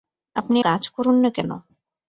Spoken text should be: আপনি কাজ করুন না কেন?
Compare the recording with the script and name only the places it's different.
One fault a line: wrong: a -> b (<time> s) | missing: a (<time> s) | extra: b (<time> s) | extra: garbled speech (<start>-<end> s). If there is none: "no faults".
no faults